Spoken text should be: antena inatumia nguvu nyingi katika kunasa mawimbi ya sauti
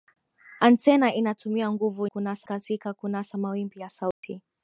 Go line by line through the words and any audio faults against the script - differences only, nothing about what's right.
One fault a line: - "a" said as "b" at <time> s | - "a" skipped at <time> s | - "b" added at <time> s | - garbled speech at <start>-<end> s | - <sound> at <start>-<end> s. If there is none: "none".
- "nyingi" said as "kunasa" at 2.0 s
- dropout at 4.1-4.2 s